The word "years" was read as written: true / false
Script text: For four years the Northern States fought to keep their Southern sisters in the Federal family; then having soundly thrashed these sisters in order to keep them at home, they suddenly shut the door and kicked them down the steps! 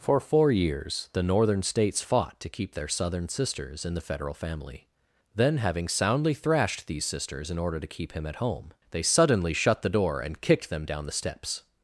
true